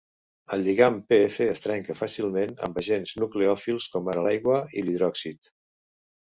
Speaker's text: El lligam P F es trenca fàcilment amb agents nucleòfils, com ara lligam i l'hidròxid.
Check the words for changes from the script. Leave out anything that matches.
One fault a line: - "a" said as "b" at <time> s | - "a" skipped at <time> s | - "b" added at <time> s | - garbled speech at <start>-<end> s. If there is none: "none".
- "lligam" said as "l'aigua" at 4.3 s